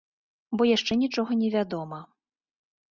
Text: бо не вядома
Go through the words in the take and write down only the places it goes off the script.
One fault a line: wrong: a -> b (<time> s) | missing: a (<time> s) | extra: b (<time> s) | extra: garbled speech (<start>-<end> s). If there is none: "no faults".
extra: яшчэ нічога (0.7 s)